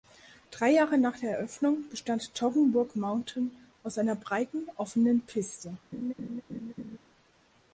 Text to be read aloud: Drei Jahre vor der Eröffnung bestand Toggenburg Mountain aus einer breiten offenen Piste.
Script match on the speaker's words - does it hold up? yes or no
no